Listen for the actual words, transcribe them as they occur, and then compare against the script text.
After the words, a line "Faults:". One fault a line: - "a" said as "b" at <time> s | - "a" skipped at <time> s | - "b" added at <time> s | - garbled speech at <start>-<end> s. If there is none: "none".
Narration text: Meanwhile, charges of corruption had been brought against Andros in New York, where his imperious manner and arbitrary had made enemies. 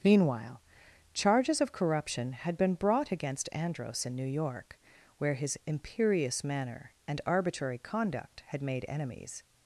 Meanwhile, charges of corruption had been brought against Andros in New York, where his imperious manner and arbitrary conduct had made enemies.
Faults:
- "conduct" added at 7.8 s